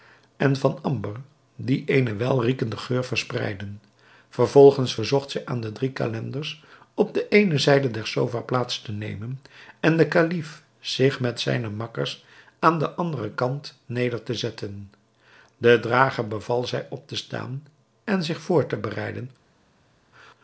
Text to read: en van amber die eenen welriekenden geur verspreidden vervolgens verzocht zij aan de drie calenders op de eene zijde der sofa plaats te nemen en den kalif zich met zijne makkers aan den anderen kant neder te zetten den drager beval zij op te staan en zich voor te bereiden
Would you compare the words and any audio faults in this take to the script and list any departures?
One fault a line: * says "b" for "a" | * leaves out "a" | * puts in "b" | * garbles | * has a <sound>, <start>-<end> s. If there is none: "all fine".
all fine